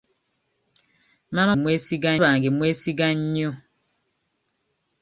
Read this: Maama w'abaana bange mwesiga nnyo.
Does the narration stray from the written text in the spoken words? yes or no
yes